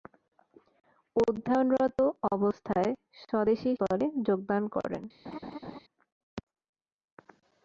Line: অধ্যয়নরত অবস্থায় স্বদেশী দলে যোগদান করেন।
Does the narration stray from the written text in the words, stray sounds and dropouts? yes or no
yes